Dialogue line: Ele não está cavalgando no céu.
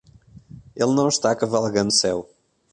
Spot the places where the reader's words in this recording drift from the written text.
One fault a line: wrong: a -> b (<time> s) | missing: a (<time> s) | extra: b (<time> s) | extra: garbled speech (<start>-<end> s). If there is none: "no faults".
missing: no (1.9 s)